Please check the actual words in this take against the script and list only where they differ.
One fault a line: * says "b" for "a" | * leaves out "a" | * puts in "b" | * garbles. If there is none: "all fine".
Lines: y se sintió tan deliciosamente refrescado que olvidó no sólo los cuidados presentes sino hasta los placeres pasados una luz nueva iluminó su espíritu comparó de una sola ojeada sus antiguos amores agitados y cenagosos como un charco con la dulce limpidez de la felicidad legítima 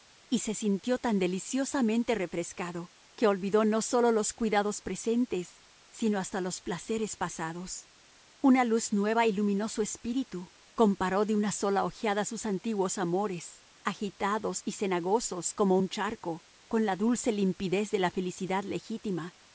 all fine